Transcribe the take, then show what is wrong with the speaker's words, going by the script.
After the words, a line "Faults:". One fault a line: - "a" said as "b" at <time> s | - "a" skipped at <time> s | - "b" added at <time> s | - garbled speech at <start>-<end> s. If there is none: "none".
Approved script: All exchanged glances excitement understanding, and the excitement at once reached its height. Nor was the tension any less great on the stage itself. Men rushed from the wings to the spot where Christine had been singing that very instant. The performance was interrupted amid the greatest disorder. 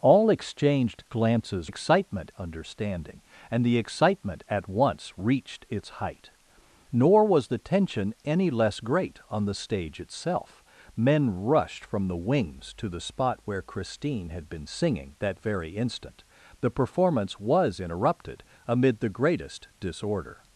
All exchanged glances excitement understanding, and the excitement at once reached its height. Nor was the tension any less great on the stage itself. Men rushed from the wings to the spot where Christine had been singing that very instant. The performance was interrupted amid the greatest disorder.
Faults:
none